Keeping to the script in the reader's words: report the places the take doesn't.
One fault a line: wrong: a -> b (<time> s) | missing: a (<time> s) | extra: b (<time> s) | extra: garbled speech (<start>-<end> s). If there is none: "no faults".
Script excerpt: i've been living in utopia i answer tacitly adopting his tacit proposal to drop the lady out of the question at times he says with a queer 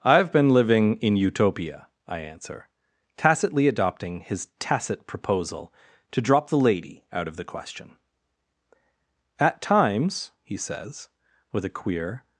no faults